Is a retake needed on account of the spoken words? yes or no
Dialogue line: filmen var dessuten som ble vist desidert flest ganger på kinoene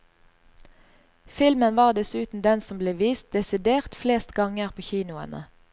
yes